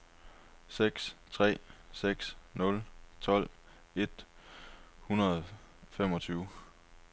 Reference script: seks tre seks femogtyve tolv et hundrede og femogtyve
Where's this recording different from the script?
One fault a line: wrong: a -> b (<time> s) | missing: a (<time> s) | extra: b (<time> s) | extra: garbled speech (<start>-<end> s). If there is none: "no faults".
wrong: femogtyve -> nul (2.5 s)